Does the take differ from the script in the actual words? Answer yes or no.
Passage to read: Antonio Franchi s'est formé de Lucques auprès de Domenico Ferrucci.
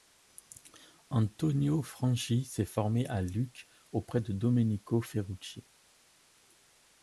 yes